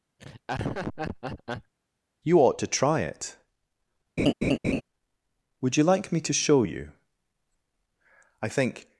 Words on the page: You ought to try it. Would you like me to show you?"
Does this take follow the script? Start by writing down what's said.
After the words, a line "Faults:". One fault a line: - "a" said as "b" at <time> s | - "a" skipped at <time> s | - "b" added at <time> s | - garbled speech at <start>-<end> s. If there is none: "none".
You ought to try it. Would you like me to show you?" "I think
Faults:
- "I think" added at 8.4 s